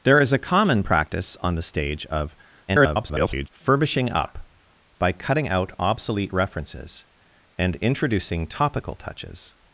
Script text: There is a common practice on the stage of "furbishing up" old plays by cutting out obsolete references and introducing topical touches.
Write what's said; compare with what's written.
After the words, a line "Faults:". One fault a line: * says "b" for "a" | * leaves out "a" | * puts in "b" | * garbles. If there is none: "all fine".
There is a common practice on the stage of [garbled] "furbishing up" by cutting out obsolete references and introducing topical touches.
Faults:
* garbles
* leaves out "old plays"